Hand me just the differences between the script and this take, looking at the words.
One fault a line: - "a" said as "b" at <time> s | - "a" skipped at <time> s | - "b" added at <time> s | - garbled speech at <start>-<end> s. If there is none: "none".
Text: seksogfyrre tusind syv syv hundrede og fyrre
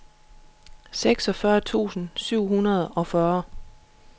- "syv" skipped at 2.5 s